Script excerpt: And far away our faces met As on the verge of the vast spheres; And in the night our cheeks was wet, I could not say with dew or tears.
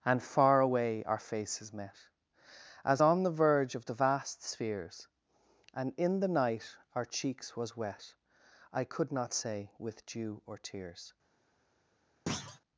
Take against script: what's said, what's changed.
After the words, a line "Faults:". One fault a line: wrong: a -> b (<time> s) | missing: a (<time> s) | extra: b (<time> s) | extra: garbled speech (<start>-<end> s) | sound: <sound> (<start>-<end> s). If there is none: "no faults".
And far away our faces met As on the verge of the vast spheres; And in the night our cheeks was wet, I could not say with dew or tears.
Faults:
sound: thud (12.3-12.6 s)